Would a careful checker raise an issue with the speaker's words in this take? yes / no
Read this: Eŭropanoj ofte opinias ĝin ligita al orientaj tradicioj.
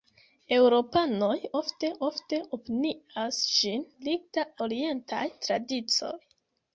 yes